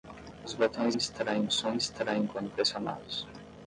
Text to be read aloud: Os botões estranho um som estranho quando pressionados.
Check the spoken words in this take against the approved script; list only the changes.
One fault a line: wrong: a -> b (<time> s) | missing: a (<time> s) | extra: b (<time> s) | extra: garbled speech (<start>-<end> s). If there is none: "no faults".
no faults